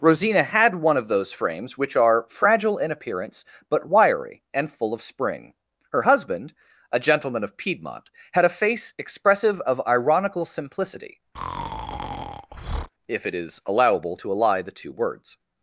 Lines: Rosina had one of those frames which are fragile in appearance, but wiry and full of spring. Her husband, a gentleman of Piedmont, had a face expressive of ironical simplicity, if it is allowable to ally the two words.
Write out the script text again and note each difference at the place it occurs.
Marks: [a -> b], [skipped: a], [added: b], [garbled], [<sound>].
Rosina had one of those frames which are fragile in appearance, but wiry and full of spring. Her husband, a gentleman of Piedmont, had a face expressive of ironical simplicity, [breath] if it is allowable to ally the two words.